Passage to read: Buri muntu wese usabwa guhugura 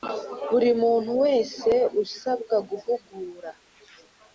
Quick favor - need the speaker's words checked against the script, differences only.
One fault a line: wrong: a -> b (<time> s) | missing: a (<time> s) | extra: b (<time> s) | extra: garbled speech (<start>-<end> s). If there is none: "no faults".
no faults